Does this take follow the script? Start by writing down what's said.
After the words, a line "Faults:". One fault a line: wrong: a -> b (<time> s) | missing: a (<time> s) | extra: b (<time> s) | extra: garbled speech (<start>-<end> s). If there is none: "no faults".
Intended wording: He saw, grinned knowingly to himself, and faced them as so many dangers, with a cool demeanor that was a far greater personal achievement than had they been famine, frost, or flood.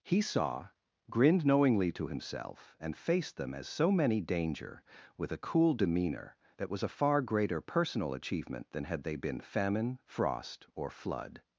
He saw, grinned knowingly to himself, and faced them as so many danger, with a cool demeanor that was a far greater personal achievement than had they been famine, frost, or flood.
Faults:
wrong: dangers -> danger (4.2 s)